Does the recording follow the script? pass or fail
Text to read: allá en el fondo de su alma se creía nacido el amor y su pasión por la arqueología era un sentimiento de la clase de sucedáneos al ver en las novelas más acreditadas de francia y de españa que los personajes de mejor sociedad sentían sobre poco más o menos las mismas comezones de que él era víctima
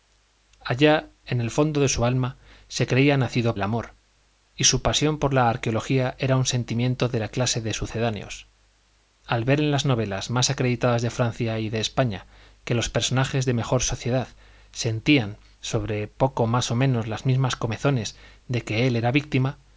pass